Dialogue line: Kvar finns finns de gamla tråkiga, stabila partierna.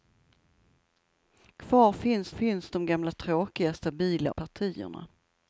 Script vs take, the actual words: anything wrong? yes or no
no